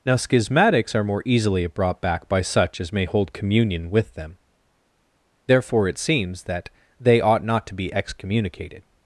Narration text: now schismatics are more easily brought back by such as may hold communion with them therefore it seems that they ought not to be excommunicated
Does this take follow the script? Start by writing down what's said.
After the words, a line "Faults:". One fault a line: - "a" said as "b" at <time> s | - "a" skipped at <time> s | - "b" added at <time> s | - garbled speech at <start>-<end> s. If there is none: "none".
now schismatics are more easily brought back by such as may hold communion with them therefore it seems that they ought not to be excommunicated
Faults:
none